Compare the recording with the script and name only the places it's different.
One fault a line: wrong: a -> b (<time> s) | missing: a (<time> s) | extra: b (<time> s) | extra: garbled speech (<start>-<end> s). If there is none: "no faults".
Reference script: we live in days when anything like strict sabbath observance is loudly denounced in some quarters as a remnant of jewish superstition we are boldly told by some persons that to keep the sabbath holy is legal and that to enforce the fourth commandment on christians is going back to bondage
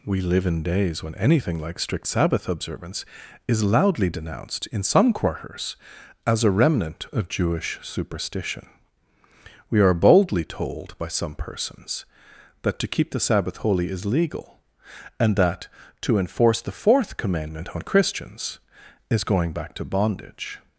no faults